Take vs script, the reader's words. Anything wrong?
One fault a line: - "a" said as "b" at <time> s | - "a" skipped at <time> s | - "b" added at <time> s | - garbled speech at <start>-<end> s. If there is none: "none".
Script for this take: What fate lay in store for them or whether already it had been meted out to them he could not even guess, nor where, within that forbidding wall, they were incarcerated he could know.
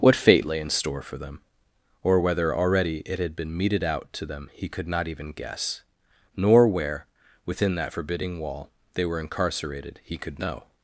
none